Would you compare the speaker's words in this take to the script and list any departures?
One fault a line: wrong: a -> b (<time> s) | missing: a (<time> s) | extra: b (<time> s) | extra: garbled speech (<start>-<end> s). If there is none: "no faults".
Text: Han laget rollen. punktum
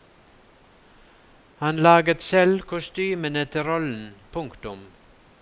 extra: selv kostymene til (2.2 s)